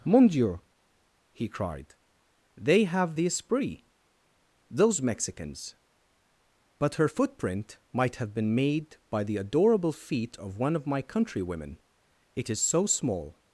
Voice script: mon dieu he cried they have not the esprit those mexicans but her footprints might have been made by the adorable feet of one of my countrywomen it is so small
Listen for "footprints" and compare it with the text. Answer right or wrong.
wrong